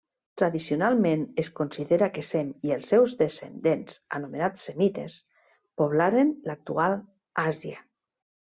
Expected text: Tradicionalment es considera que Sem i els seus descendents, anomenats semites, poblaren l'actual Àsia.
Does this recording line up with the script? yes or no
yes